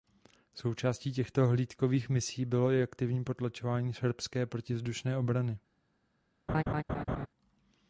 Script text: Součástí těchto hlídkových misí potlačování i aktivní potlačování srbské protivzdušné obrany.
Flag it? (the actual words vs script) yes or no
yes